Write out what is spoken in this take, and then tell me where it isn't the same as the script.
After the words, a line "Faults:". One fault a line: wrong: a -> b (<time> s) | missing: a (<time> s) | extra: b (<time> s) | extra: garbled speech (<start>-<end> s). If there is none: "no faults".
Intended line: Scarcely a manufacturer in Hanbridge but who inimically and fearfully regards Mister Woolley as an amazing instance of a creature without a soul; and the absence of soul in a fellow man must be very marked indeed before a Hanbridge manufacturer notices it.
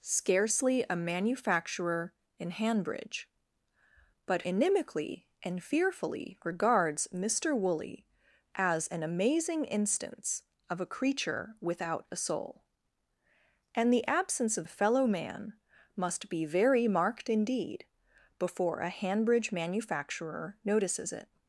Scarcely a manufacturer in Hanbridge but inimically and fearfully regards Mister Woolley as an amazing instance of a creature without a soul; and the absence of a fellow man must be very marked indeed before a Hanbridge manufacturer notices it.
Faults:
missing: who (4.4 s)
missing: soul in (14.7 s)